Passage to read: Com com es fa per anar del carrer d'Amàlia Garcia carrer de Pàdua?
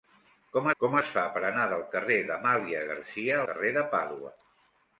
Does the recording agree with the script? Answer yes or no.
yes